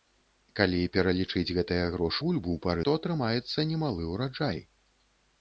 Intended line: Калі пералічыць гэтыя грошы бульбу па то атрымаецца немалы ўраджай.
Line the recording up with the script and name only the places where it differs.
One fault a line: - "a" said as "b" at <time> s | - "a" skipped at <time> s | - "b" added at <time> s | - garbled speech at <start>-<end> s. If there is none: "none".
none